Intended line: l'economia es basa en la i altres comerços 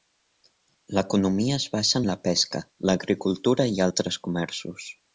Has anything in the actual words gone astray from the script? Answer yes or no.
yes